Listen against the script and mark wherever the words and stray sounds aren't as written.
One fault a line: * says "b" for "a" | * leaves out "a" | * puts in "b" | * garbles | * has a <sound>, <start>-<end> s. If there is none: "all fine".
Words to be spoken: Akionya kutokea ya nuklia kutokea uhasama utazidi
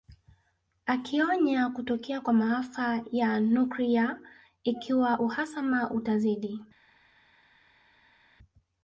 * puts in "kwa maafa"
* says "ikiwa" for "kutokea"